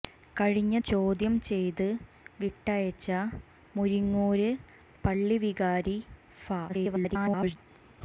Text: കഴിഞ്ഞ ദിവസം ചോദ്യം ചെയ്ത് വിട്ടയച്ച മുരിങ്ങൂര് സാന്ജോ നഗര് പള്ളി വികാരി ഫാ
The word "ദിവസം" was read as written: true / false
false